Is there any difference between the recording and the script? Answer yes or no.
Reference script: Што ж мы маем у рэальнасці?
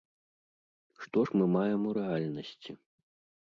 no